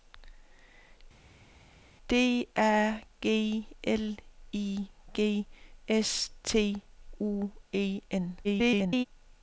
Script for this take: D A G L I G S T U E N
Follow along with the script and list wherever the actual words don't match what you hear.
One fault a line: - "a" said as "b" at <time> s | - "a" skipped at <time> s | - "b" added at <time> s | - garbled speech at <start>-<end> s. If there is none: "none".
- garbled speech at 8.4-9.1 s